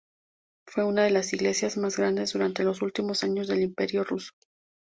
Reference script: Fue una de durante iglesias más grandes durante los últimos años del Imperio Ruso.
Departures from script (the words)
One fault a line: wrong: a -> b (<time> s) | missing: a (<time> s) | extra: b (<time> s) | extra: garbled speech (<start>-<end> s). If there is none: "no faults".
wrong: durante -> las (1.1 s)